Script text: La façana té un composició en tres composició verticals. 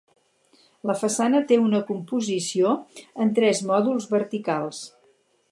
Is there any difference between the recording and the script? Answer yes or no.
yes